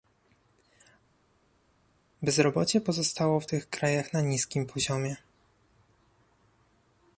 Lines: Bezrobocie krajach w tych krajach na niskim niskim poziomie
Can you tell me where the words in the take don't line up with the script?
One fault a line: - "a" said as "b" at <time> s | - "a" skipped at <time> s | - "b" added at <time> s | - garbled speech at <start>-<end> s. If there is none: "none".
- "krajach" said as "pozostało" at 2.8 s
- "niskim" skipped at 4.7 s